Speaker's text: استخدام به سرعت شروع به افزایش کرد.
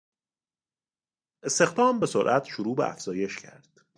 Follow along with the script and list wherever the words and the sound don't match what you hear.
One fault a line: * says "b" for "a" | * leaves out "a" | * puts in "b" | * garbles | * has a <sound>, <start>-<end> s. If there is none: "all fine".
all fine